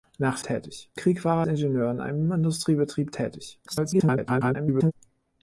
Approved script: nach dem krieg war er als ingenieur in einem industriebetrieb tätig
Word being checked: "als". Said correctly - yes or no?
no